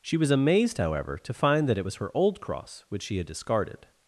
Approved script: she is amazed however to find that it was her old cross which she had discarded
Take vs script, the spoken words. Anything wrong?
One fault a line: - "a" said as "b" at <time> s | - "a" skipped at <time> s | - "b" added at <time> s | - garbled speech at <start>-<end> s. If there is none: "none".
- "is" said as "was" at 0.2 s